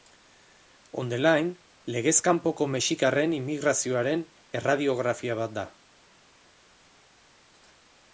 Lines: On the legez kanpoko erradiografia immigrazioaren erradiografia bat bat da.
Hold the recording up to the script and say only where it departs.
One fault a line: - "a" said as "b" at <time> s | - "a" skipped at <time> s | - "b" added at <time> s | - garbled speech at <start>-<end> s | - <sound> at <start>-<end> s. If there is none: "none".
- "line" added at 1.2 s
- "erradiografia" said as "mexikarren" at 2.8 s
- "bat" skipped at 5.6 s